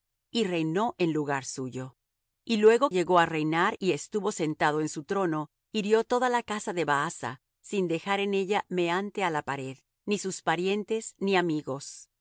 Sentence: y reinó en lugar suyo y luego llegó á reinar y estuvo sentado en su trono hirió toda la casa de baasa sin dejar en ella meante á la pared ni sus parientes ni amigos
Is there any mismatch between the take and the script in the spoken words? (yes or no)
no